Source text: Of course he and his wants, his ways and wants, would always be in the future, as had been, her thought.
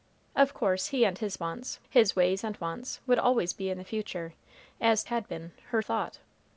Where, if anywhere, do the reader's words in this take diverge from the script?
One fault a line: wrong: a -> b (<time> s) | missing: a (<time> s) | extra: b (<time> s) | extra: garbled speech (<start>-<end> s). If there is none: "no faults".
no faults